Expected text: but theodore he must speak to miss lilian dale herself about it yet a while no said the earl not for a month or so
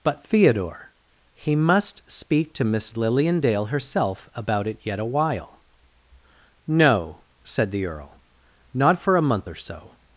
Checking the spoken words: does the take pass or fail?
pass